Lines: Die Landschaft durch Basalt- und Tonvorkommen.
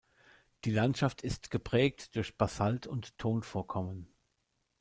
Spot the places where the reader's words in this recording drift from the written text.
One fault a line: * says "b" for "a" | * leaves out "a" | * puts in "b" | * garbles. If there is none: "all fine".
* puts in "ist geprägt"